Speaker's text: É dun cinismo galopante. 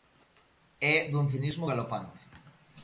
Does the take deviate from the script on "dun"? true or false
false